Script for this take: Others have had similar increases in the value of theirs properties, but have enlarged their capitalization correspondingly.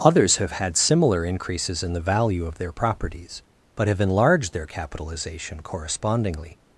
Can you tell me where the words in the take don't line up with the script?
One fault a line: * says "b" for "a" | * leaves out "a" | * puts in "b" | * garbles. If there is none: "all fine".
* says "their" for "theirs"